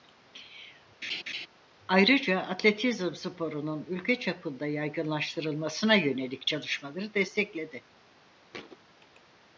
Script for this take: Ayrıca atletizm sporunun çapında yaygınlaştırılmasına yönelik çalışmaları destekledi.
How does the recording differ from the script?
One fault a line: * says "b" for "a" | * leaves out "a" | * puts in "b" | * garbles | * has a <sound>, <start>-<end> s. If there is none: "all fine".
* has a laugh, 1.0-1.5 s
* puts in "ülke"
* has a thud, 8.5-8.8 s